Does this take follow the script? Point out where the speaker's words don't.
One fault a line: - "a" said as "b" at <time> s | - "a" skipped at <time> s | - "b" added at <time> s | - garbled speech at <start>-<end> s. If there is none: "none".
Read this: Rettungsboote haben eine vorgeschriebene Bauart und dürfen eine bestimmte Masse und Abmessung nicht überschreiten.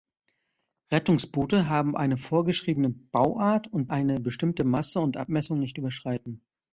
- "dürfen" skipped at 3.9 s